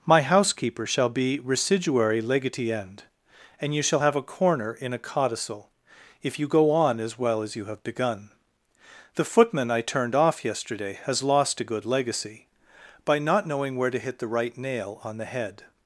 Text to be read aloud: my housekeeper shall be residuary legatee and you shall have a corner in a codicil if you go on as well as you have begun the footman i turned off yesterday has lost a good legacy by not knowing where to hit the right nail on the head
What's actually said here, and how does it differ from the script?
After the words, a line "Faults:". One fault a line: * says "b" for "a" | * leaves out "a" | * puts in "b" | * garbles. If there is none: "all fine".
my housekeeper shall be residuary legatee end and you shall have a corner in a codicil if you go on as well as you have begun the footman i turned off yesterday has lost a good legacy by not knowing where to hit the right nail on the head
Faults:
* puts in "end"